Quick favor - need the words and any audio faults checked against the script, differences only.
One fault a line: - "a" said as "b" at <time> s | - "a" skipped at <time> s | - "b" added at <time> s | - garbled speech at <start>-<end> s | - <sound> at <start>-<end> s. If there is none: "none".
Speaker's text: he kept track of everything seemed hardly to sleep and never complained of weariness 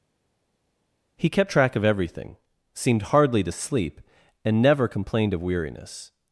none